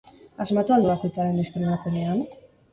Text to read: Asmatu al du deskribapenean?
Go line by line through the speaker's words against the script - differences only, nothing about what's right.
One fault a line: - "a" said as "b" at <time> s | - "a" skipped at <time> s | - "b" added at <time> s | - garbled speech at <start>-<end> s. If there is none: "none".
- "bakoitzaren" added at 0.9 s